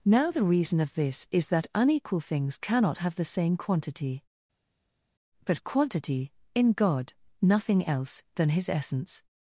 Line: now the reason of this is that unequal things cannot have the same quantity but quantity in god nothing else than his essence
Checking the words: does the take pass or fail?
pass